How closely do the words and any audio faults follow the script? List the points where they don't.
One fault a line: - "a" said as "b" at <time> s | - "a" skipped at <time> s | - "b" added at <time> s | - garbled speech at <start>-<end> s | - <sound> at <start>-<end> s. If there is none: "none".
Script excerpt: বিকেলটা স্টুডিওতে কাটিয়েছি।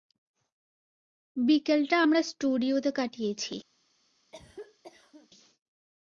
- "আমরা" added at 2.0 s
- cough at 4.3-5.3 s